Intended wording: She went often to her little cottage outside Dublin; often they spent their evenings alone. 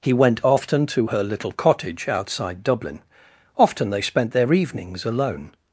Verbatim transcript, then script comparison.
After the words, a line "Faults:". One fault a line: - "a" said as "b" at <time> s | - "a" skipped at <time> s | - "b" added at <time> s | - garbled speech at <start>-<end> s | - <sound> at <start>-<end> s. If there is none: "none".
He went often to her little cottage outside Dublin; often they spent their evenings alone.
Faults:
- "She" said as "He" at 0.0 s